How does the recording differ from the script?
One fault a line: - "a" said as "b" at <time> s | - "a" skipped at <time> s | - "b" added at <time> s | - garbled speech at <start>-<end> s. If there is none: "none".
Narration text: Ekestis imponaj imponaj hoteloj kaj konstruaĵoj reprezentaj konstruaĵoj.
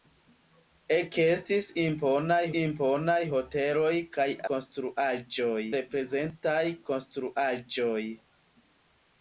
none